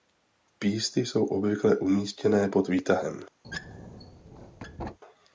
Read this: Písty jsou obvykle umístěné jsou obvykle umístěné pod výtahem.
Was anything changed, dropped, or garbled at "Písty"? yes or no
no